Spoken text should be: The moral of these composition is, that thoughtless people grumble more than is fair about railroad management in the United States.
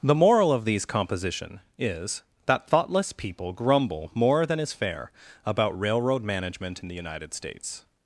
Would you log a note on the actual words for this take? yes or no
no